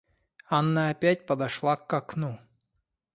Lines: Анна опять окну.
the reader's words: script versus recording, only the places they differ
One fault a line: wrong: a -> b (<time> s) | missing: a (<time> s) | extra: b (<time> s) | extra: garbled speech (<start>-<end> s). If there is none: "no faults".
extra: подошла к (1.3 s)